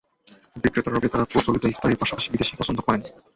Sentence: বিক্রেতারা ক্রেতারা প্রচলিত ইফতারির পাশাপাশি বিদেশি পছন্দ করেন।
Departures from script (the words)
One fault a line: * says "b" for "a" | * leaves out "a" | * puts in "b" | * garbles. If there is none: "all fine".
all fine